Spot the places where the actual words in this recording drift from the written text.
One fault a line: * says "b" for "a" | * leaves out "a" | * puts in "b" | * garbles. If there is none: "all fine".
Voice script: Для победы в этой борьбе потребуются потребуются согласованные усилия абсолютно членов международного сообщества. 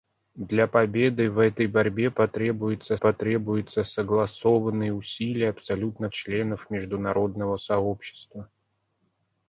all fine